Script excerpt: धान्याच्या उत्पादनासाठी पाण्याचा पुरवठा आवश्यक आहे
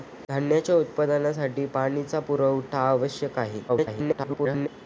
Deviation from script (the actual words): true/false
true